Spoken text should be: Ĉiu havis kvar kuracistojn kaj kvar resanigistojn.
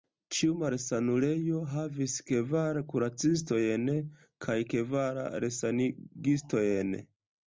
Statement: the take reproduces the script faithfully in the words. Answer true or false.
false